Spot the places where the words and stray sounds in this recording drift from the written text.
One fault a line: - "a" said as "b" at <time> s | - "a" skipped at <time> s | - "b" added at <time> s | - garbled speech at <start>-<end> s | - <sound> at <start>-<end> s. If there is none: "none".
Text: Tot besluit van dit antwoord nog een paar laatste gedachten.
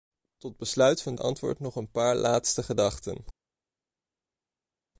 - "dit" skipped at 1.1 s